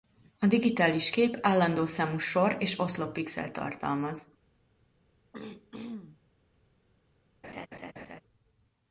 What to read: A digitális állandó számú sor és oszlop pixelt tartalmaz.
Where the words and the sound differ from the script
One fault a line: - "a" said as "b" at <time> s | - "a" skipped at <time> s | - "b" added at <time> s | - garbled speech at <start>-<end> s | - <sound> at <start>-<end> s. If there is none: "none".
- "kép" added at 1.1 s
- throat clearing at 5.3-6.2 s
- laugh at 7.4-8.2 s